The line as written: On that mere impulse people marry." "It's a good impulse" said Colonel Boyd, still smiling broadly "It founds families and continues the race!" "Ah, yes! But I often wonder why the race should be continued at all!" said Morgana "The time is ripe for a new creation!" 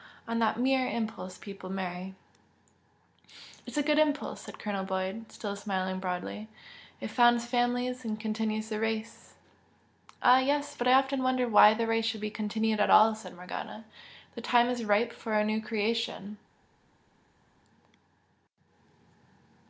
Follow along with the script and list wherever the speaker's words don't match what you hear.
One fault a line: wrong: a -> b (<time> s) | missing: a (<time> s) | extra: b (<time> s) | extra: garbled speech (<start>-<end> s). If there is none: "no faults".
no faults